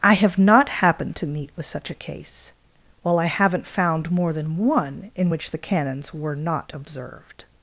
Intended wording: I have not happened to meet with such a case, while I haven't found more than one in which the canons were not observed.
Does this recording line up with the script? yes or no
yes